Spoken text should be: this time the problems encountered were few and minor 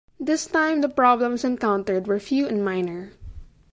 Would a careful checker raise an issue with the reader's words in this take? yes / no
no